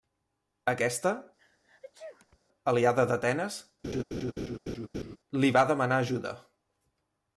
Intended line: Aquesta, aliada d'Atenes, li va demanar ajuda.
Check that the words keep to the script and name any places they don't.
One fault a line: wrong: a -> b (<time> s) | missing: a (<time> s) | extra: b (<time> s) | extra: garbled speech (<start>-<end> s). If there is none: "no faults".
no faults